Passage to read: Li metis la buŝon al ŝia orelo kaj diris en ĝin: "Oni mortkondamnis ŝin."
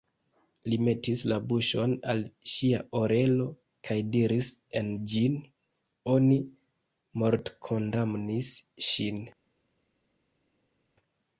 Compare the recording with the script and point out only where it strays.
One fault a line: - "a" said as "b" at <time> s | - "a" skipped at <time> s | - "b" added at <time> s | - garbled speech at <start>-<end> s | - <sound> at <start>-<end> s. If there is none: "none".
none